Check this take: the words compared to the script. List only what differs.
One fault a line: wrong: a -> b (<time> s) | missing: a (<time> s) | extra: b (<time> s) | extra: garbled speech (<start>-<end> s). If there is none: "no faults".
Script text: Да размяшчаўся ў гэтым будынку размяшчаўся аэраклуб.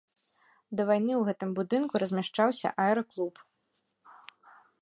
wrong: размяшчаўся -> вайны (0.9 s)